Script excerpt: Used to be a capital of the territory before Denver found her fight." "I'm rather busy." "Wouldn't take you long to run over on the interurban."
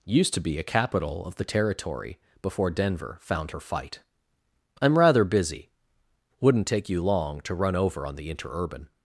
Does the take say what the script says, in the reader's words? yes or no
yes